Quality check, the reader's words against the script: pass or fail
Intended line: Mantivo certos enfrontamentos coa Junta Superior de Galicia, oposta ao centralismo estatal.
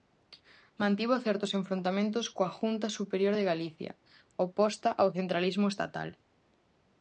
pass